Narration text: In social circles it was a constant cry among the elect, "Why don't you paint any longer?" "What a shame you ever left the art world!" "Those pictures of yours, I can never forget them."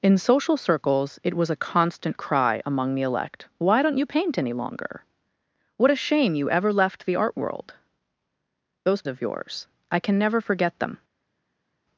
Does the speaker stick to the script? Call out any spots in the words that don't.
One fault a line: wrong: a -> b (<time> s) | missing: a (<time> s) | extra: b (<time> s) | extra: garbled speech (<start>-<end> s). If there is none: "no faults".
missing: pictures (9.0 s)